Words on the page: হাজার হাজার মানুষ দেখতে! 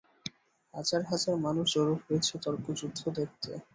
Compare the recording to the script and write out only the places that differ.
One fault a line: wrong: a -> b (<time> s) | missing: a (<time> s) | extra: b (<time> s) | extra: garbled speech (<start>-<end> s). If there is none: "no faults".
extra: জড়ো হয়েছে তর্কযুদ্ধ (1.7 s)